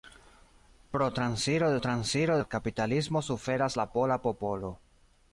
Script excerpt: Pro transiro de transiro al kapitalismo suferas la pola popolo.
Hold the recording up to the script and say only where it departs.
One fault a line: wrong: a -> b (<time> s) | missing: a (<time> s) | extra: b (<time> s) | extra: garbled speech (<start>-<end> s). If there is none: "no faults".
no faults